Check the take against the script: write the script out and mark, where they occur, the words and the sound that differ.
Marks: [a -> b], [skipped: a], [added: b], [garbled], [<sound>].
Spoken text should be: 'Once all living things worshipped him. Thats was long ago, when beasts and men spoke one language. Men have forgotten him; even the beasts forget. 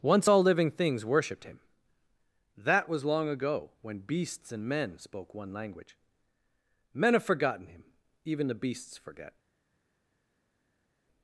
'Once all living things worshipped him. [Thats -> That] was long ago, when beasts and men spoke one language. Men have forgotten him; even the beasts forget.